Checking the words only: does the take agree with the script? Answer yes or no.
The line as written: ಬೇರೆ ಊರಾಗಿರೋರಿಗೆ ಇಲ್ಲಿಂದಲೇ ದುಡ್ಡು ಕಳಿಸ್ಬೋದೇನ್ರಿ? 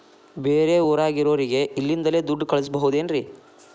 yes